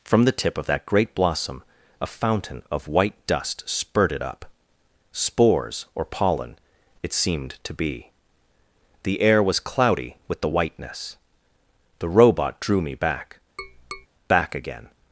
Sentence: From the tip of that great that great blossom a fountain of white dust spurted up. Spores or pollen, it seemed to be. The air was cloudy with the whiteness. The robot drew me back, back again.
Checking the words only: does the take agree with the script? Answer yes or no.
no